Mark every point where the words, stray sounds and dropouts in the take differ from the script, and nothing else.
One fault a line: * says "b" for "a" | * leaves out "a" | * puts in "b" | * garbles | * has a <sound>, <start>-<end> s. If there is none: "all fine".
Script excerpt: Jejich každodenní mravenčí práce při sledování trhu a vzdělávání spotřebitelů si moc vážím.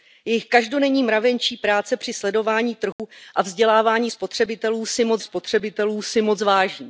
* has a dropout, 2.9-3.0 s
* puts in "spotřebitelů si moc"